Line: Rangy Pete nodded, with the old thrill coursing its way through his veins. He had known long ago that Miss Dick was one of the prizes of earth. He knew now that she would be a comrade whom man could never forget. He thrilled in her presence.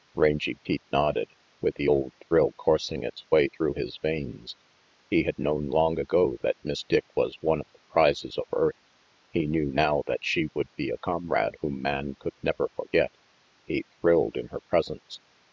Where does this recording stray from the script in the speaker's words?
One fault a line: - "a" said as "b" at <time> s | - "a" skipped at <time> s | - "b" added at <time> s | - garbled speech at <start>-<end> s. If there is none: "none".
none